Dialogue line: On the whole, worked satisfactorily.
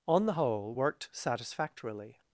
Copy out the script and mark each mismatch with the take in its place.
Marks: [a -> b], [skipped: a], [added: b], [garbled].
On the whole, worked satisfactorily.